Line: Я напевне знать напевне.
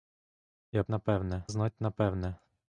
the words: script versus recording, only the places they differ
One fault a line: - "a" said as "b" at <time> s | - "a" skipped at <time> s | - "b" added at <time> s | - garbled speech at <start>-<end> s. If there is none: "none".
none